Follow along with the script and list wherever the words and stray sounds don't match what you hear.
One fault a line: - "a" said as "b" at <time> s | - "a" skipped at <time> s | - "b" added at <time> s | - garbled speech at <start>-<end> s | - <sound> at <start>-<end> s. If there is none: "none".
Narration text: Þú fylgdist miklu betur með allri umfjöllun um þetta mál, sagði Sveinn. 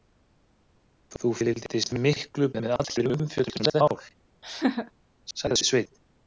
- "betur" skipped at 2.5 s
- "þetta" skipped at 3.7 s
- laugh at 4.4-4.9 s